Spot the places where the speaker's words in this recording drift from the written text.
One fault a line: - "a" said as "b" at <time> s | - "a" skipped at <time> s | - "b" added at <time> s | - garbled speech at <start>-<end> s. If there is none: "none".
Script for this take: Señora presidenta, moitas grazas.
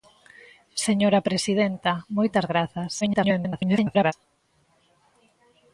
- garbled speech at 3.0-4.1 s